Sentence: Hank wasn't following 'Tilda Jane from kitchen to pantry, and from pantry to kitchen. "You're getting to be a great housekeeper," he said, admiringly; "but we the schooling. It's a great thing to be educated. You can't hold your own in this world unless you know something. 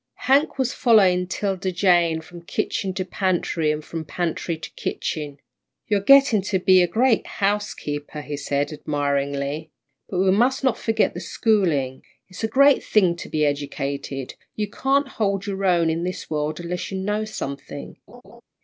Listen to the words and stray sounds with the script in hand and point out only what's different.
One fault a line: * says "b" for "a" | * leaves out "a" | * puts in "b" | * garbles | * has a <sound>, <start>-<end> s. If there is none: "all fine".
* says "was" for "wasn't"
* puts in "must not forget"
* has a laugh, 18.1-18.4 s